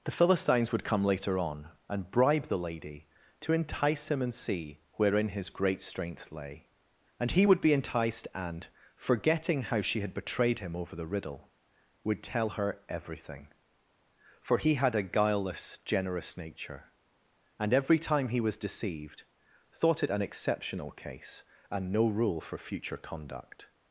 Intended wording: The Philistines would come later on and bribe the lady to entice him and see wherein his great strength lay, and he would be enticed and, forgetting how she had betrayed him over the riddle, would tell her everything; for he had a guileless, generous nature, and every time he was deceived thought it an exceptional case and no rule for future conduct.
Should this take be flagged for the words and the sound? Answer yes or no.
no